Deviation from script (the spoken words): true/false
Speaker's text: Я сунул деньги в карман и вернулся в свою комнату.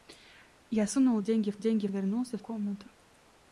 true